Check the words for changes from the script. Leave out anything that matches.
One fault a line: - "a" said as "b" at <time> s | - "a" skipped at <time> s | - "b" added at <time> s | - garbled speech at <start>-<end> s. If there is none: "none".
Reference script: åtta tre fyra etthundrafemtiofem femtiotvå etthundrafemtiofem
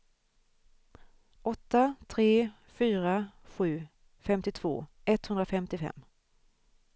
- "etthundrafemtiofem" said as "sju" at 3.4 s